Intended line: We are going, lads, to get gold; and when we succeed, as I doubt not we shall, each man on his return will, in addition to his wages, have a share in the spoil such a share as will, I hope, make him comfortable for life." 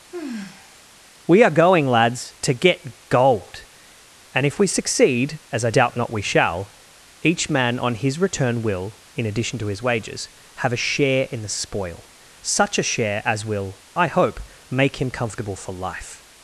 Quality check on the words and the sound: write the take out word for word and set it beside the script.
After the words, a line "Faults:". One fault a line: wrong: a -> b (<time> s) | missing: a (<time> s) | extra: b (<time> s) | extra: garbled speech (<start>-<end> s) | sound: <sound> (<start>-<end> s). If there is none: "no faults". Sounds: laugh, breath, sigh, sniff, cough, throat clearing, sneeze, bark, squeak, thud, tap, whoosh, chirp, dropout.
We are going, lads, to get gold; and if we succeed, as I doubt not we shall, each man on his return will, in addition to his wages, have a share in the spoil such a share as will, I hope, make him comfortable for life."
Faults:
sound: sigh (0.1-0.8 s)
wrong: when -> if (4.5 s)